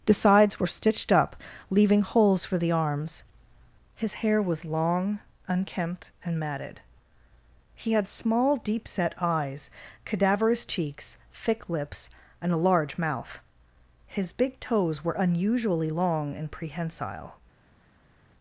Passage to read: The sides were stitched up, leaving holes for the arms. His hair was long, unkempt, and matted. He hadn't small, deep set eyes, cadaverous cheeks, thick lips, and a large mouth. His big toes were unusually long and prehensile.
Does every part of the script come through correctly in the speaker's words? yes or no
no